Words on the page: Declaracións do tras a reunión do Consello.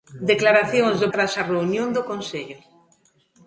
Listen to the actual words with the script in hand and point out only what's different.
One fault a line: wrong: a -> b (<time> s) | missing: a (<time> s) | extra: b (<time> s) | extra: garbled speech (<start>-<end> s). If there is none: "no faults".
no faults